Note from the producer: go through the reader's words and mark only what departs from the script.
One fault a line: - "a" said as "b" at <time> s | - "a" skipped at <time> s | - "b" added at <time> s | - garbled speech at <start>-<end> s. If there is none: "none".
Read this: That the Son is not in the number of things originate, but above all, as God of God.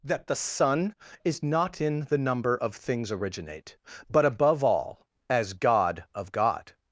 none